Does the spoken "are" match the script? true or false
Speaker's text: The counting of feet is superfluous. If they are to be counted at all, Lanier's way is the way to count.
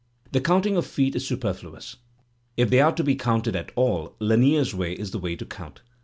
true